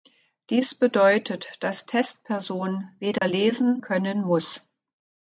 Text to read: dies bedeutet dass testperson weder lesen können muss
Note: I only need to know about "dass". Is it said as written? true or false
true